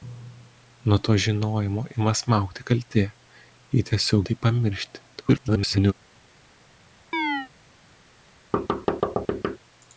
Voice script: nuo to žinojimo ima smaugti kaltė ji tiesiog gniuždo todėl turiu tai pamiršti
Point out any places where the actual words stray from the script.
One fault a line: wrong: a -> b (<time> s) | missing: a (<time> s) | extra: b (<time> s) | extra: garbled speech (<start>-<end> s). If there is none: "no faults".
missing: gniuždo todėl turiu (4.2 s)
extra: garbled speech (5.1-5.9 s)